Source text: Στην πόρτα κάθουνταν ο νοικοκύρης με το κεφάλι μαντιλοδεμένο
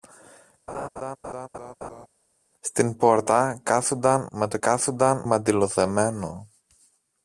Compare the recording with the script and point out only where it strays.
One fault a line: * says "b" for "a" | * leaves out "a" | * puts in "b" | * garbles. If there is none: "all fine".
* leaves out "ο νοικοκύρης"
* says "κάθουνταν" for "κεφάλι"